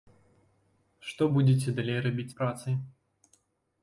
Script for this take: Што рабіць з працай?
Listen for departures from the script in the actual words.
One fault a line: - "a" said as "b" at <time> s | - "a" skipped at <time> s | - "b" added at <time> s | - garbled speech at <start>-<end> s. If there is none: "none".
- "будзеце далей" added at 1.3 s